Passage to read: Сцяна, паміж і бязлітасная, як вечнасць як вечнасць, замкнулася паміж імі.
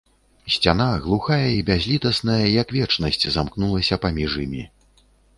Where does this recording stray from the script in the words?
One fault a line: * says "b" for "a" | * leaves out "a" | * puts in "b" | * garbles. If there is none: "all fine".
* says "глухая" for "паміж"
* leaves out "як вечнасць"